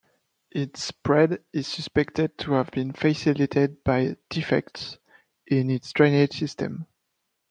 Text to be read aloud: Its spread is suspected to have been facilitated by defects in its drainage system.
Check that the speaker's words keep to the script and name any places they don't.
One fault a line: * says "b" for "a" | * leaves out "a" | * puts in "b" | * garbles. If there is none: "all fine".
all fine